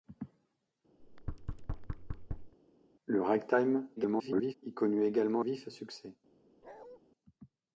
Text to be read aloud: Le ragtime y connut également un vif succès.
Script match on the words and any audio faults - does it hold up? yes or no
no